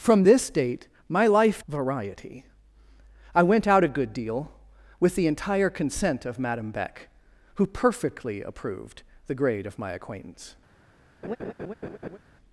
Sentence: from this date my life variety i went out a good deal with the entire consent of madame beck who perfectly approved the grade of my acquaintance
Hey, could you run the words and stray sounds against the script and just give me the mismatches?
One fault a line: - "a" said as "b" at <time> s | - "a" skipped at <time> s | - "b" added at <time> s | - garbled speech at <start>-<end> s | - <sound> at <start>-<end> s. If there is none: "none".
- laugh at 11.2-12.2 s